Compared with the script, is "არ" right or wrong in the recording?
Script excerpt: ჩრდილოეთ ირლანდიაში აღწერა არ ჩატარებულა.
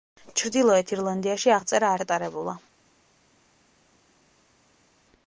wrong